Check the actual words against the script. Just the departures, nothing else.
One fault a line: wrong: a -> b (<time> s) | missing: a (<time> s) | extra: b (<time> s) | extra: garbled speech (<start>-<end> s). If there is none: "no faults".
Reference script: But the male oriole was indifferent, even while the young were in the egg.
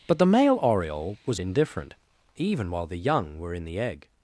no faults